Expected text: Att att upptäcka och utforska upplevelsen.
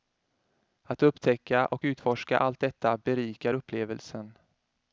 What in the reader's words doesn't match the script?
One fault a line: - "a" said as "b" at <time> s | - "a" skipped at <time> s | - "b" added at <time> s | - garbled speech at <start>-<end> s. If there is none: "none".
- "att" skipped at 1.0 s
- "allt detta berikar" added at 2.4 s